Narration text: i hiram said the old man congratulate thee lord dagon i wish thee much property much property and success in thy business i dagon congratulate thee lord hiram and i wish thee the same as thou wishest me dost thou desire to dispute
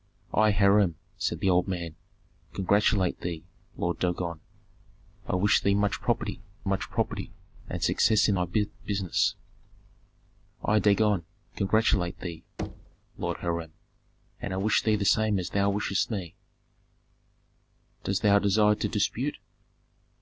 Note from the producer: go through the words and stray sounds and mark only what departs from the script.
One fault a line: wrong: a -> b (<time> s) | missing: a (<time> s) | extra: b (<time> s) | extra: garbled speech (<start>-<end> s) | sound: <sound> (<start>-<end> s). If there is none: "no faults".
sound: thud (12.6-13.0 s)